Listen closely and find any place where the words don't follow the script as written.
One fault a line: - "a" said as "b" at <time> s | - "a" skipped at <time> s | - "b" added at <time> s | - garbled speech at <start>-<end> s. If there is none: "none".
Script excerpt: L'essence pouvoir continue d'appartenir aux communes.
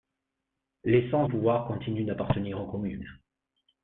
none